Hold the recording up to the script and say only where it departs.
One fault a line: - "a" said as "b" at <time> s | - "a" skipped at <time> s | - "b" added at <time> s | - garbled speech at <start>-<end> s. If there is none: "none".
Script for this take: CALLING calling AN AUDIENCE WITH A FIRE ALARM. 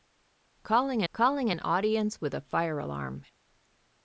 none